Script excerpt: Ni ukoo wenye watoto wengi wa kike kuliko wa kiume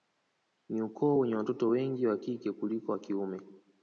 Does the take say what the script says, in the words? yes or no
yes